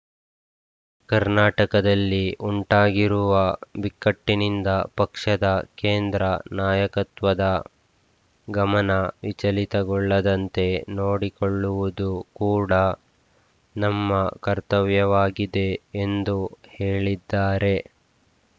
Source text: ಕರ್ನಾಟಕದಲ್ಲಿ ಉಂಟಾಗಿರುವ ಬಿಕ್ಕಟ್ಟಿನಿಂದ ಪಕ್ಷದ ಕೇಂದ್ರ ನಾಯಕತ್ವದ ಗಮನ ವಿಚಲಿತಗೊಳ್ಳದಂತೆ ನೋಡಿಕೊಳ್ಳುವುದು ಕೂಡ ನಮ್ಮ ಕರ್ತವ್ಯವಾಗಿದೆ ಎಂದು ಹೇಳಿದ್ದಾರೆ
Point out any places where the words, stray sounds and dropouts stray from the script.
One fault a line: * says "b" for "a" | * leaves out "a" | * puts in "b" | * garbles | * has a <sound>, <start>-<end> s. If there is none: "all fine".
all fine